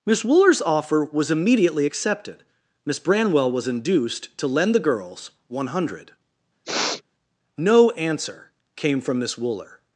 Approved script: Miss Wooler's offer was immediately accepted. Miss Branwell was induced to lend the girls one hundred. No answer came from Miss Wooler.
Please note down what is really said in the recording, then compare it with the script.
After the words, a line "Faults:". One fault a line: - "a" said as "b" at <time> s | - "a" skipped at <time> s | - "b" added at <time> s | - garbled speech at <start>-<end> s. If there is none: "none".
Miss Wooler's offer was immediately accepted. Miss Branwell was induced to lend the girls one hundred. No answer came from Miss Wooler.
Faults:
none